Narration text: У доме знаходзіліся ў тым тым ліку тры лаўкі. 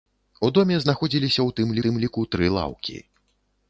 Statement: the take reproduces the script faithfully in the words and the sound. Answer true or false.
true